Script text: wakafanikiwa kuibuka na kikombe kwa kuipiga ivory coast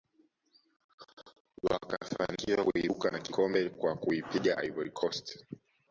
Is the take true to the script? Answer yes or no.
yes